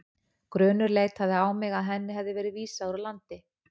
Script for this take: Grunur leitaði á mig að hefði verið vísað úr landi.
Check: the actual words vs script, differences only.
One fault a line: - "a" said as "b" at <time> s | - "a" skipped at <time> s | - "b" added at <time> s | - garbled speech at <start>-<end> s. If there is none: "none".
- "henni" added at 1.9 s